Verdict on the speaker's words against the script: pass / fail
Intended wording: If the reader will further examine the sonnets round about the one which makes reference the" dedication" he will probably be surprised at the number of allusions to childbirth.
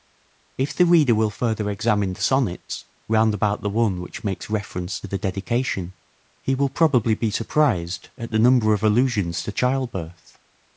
pass